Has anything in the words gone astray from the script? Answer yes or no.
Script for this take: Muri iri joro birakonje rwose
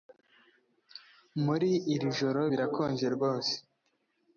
no